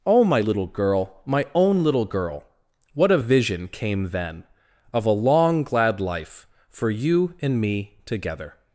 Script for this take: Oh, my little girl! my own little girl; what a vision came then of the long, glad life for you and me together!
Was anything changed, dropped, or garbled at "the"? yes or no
yes